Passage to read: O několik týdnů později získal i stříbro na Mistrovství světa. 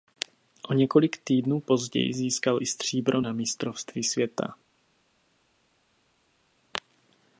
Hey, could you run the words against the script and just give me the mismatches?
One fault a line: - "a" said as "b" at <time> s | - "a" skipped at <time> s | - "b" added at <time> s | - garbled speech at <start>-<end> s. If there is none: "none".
none